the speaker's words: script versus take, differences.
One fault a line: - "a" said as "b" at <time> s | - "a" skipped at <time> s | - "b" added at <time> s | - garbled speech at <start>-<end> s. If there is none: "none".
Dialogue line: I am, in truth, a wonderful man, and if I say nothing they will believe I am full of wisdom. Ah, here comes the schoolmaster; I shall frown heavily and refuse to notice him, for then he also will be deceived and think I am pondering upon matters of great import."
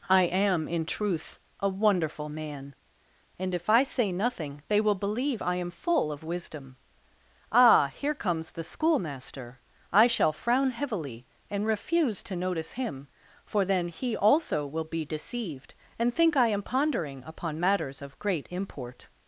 none